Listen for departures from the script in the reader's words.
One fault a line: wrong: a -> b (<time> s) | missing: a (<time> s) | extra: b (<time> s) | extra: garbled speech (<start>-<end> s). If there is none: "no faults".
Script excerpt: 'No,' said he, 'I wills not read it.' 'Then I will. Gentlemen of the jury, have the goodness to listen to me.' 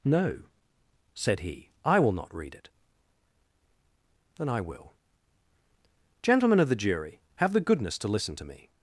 wrong: wills -> will (2.0 s)